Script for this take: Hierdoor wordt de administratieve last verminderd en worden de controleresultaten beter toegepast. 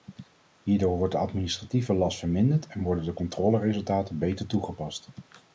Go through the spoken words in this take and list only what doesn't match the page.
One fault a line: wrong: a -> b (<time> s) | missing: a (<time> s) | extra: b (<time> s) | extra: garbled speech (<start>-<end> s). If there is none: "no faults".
no faults